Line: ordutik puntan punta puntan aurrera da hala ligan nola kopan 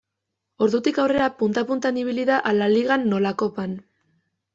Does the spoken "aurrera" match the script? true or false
false